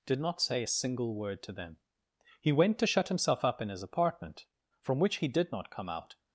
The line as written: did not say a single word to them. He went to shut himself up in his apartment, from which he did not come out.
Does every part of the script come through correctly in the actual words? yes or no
yes